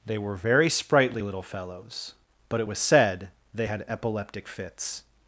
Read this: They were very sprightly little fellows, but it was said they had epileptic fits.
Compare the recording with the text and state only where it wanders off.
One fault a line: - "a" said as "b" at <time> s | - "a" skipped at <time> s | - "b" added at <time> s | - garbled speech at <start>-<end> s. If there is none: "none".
none